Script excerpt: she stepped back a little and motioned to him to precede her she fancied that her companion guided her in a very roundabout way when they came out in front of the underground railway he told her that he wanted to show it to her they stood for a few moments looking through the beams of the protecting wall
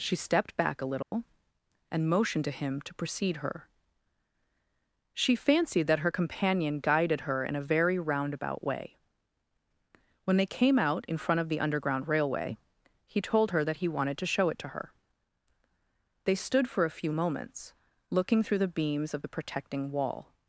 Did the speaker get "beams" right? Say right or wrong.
right